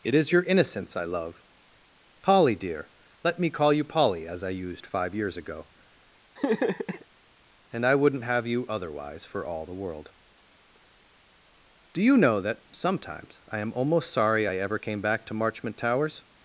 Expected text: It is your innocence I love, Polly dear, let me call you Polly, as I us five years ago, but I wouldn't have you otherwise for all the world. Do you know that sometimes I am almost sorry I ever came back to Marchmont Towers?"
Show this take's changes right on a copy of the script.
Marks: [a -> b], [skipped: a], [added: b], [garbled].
It is your innocence I love, Polly dear, let me call you Polly, as I [us -> used] five years ago, [but -> and] I wouldn't have you otherwise for all the world. Do you know that sometimes I am almost sorry I ever came back to Marchmont Towers?"